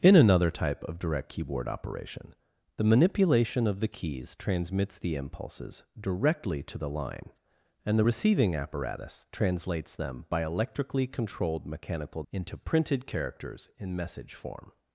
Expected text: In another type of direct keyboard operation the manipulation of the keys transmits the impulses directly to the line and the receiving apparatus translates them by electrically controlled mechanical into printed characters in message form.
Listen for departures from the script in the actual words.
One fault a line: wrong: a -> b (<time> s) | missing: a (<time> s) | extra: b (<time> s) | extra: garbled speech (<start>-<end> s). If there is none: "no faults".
no faults